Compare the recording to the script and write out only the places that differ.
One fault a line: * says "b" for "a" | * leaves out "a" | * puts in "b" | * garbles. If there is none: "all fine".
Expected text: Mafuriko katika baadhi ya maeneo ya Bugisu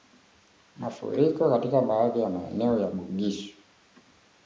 all fine